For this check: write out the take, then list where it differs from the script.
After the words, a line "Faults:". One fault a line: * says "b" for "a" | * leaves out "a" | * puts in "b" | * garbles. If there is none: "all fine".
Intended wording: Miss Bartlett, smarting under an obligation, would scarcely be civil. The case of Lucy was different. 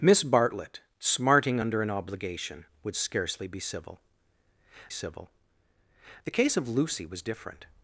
Miss Bartlett, smarting under an obligation, would scarcely be civil civil. The case of Lucy was different.
Faults:
* puts in "civil"